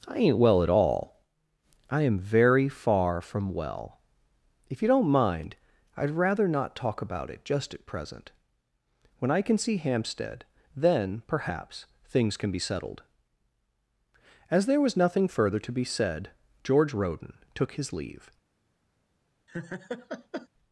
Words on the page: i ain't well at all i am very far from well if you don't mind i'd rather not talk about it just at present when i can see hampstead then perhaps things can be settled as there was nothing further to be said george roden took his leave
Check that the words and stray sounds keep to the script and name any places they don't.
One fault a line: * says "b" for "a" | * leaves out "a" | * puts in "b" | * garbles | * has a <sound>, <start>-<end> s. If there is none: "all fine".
* has a laugh, 19.5-20.5 s